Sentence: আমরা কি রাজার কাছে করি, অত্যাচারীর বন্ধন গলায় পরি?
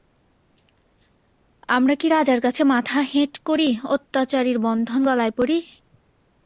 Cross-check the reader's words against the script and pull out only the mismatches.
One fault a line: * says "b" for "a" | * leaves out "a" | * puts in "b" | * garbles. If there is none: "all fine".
* puts in "মাথা হেঁট"